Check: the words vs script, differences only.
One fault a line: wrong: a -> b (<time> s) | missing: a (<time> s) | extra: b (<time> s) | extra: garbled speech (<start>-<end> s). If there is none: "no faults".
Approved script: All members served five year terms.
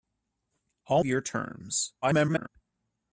missing: members served five (1.0 s)
extra: garbled speech (2.0-2.5 s)